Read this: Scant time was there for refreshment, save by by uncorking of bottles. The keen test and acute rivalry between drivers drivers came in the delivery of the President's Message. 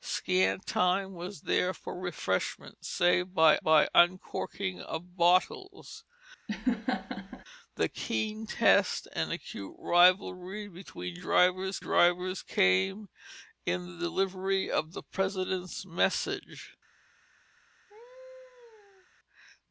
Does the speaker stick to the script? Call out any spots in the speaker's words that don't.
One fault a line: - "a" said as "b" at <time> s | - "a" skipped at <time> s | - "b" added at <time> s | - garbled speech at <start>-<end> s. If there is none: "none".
none